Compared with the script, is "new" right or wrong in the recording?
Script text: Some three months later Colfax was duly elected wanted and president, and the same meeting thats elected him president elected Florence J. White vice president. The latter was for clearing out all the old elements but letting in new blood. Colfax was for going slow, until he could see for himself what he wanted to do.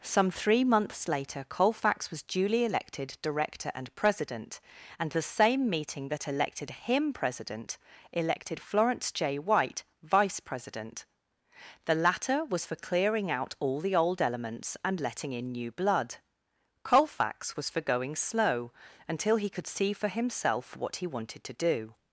right